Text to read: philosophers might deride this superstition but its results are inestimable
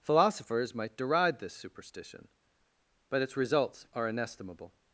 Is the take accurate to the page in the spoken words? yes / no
yes